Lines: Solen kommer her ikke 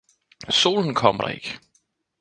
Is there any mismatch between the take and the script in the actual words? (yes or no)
yes